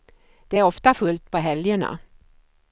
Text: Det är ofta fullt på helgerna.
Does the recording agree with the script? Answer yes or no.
yes